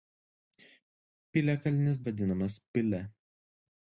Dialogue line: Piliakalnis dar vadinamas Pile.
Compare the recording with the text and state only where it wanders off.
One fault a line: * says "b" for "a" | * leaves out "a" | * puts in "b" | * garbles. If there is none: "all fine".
* leaves out "dar"